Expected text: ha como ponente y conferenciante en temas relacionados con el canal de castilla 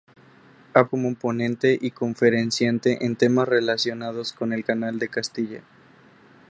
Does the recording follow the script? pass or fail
pass